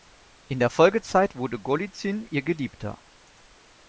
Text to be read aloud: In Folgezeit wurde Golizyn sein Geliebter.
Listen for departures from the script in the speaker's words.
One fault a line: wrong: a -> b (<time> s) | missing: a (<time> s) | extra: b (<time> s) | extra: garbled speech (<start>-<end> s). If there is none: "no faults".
extra: der (0.6 s)
wrong: sein -> ihr (2.3 s)